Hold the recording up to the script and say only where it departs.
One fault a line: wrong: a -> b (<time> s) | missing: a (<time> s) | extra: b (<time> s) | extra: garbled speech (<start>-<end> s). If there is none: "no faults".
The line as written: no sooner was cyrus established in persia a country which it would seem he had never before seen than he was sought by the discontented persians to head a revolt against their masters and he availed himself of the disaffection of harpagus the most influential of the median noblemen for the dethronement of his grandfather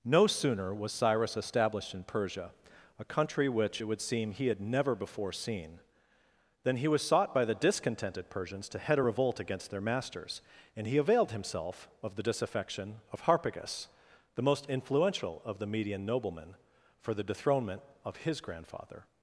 no faults